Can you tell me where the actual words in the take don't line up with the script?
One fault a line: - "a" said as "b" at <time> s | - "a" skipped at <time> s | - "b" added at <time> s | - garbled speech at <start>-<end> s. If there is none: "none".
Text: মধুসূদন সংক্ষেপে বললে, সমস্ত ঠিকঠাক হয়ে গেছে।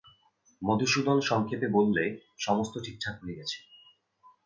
none